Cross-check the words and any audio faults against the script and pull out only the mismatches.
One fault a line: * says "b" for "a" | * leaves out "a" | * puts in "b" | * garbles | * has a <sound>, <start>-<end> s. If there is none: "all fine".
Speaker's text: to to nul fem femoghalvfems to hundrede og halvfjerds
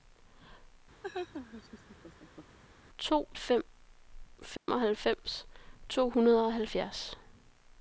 * has a laugh, 1.0-2.6 s
* leaves out "to nul"
* has a dropout, 4.6-4.7 s